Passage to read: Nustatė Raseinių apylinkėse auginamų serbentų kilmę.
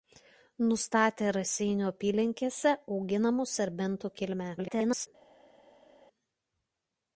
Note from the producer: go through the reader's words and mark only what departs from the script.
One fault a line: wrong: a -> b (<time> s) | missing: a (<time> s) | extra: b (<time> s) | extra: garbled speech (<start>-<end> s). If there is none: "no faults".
extra: garbled speech (4.6-5.1 s)